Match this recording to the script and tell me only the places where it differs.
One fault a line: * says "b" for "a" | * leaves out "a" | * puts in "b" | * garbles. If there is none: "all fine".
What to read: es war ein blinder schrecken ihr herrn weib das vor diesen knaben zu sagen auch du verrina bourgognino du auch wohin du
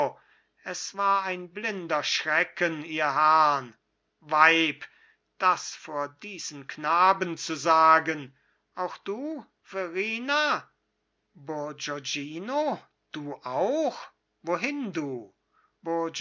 all fine